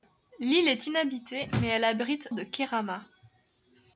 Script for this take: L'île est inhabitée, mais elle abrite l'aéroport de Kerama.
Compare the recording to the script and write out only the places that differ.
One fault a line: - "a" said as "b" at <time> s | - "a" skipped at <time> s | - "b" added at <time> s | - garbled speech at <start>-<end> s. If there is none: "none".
- "l'aéroport" skipped at 2.3 s